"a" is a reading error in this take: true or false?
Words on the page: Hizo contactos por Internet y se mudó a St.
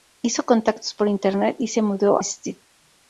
true